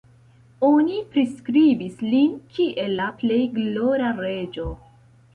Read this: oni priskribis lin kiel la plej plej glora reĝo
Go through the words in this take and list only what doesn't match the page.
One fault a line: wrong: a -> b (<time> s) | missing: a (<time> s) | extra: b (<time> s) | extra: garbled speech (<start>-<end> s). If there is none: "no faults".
missing: plej (3.4 s)